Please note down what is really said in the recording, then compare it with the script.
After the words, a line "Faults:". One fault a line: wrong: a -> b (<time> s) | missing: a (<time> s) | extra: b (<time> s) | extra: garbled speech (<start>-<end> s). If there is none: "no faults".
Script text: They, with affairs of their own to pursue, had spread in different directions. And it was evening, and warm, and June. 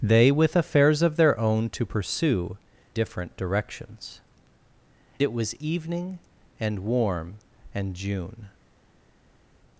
They, with affairs of their own to pursue, different directions. It was evening, and warm, and June.
Faults:
missing: had spread in (2.6 s)
missing: And (4.2 s)